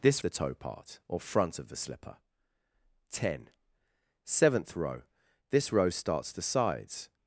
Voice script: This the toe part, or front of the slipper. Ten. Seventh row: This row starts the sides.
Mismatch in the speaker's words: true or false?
false